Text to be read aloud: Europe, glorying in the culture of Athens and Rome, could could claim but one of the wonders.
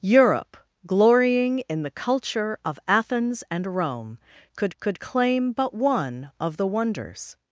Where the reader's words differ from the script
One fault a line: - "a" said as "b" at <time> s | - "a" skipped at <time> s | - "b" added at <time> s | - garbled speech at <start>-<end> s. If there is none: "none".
none